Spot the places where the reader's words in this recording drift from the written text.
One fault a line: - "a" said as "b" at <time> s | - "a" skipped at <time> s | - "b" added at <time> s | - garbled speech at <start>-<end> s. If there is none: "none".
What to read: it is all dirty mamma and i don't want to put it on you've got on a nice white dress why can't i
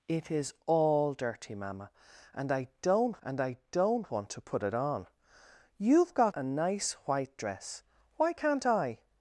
- "and i don't" added at 3.2 s
- "on" skipped at 6.3 s